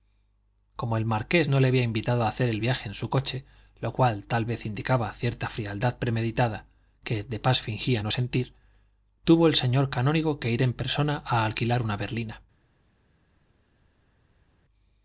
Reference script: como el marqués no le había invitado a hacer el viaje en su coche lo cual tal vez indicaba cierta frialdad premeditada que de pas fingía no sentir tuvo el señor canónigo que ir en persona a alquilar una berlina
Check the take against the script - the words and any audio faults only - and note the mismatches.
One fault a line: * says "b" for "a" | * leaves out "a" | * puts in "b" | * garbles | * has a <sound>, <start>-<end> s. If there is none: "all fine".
all fine